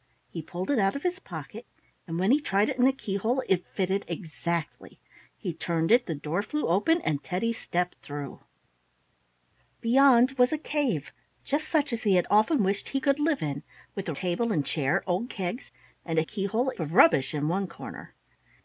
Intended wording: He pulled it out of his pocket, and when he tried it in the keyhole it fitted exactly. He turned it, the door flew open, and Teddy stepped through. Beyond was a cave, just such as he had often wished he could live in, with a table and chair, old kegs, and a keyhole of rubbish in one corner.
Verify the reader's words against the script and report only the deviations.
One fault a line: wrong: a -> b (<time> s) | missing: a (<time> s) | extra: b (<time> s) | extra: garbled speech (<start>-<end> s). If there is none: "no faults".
no faults